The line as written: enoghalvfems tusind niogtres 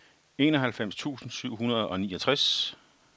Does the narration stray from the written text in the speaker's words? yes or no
yes